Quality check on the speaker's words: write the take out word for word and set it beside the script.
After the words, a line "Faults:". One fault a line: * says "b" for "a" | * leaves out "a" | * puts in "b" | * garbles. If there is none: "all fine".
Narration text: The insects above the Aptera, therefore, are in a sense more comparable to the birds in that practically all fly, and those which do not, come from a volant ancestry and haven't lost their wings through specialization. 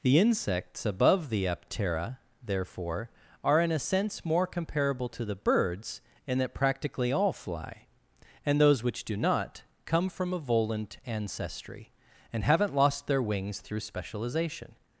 The insects above the Aptera, therefore, are in a sense more comparable to the birds in that practically all fly, and those which do not, come from a volant ancestry and haven't lost their wings through specialization.
Faults:
all fine